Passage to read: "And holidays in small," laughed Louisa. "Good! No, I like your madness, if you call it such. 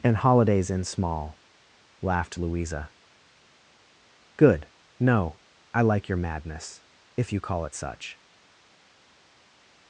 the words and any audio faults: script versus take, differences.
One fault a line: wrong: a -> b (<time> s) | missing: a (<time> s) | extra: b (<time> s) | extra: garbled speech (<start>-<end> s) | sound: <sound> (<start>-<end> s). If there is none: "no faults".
no faults